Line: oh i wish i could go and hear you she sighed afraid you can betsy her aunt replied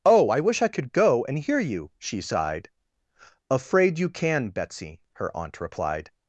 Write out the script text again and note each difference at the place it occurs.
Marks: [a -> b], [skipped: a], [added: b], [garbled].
oh i wish i could go and hear you she sighed afraid you can betsy her aunt replied